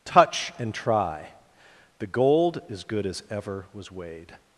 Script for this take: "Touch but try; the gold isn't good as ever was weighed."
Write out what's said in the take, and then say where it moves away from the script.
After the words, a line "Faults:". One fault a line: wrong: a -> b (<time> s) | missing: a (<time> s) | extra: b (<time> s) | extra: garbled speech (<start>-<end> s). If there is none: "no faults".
"Touch and try; the gold is good as ever was weighed."
Faults:
wrong: but -> and (0.6 s)
wrong: isn't -> is (2.7 s)